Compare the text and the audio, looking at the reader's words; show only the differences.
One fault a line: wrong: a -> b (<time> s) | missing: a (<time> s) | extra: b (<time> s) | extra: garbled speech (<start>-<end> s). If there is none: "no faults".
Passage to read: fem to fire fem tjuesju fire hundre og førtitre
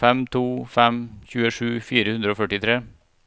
missing: fire (0.4 s)